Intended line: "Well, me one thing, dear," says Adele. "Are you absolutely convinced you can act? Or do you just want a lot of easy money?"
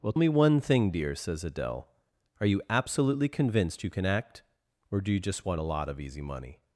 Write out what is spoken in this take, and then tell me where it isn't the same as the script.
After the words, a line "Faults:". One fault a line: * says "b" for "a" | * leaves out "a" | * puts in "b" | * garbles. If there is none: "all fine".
"Well, me one thing, dear," says Adele. "Are you absolutely convinced you can act? Or do you just want a lot of easy money?"
Faults:
all fine